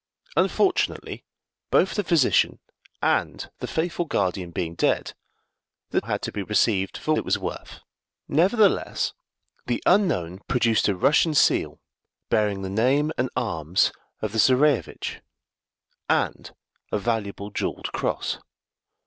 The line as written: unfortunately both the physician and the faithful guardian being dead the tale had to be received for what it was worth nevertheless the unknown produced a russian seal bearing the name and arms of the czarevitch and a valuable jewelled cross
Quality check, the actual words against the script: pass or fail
fail